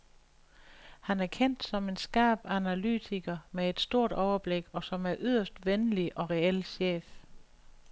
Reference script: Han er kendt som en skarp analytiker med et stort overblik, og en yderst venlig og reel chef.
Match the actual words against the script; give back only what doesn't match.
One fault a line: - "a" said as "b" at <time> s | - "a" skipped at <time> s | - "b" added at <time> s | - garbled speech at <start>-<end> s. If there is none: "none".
- "som" added at 4.8 s